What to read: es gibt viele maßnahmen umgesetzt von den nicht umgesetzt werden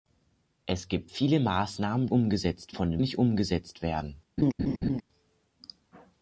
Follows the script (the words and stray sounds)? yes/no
no